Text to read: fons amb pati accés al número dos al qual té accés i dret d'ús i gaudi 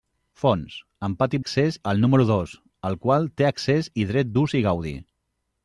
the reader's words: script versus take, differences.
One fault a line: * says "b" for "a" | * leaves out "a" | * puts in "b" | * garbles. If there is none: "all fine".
all fine